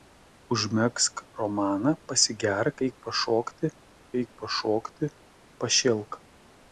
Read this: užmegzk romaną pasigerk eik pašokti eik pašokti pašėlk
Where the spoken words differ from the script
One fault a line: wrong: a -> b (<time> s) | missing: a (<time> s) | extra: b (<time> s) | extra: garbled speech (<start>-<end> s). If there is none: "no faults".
no faults